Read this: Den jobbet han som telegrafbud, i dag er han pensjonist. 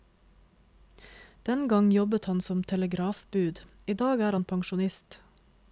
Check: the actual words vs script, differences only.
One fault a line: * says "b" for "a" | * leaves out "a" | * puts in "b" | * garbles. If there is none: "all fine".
* puts in "gang"